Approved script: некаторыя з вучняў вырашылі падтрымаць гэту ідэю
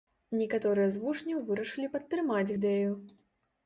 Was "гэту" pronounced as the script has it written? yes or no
no